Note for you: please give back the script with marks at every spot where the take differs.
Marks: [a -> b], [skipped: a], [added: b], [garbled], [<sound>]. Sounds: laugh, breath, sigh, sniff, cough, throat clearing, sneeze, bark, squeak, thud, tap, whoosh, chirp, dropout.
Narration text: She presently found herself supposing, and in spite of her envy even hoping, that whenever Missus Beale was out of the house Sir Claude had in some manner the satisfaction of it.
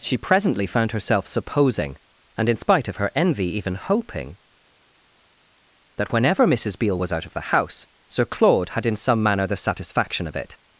She presently found herself supposing, and in spite of her envy even hoping, that whenever Missus Beale was out of the house Sir Claude had in some manner the satisfaction of it.